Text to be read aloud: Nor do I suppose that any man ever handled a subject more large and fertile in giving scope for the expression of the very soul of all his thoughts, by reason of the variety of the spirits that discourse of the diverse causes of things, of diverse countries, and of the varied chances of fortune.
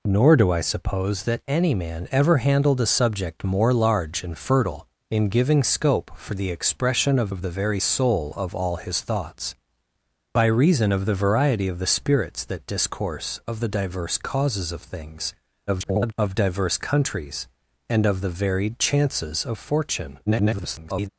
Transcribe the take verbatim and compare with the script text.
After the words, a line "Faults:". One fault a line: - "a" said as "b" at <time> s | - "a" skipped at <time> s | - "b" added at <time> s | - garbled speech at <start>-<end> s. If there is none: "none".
Nor do I suppose that any man ever handled a subject more large and fertile in giving scope for the expression of of the very soul of all his thoughts, by reason of the variety of the spirits that discourse of the diverse causes of things, [garbled] of diverse countries, and of the varied chances of fortune. [garbled]
Faults:
- "of" added at 7.3 s
- garbled speech at 15.7-16.1 s
- garbled speech at 20.3-21.1 s